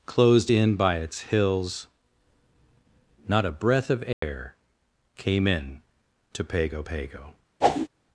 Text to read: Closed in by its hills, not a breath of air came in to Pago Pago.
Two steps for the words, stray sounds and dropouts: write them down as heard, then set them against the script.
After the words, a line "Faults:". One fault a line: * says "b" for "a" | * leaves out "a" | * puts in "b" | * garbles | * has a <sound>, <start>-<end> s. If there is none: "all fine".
Closed in by its hills, not a breath of air came in to Pago Pago.
Faults:
* has a dropout, 4.1-4.2 s
* has a whoosh, 7.6-7.9 s